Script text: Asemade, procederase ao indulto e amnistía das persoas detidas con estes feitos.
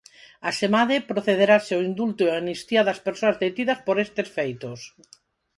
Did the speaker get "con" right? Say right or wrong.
wrong